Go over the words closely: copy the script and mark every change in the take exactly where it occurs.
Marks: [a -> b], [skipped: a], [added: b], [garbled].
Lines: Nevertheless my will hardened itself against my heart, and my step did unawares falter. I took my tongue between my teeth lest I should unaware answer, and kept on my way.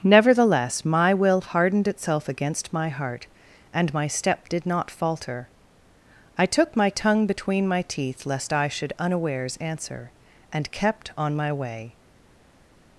Nevertheless my will hardened itself against my heart, and my step did [unawares -> not] falter. I took my tongue between my teeth lest I should [unaware -> unawares] answer, and kept on my way.